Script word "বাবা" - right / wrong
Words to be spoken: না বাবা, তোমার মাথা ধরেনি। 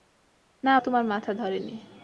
wrong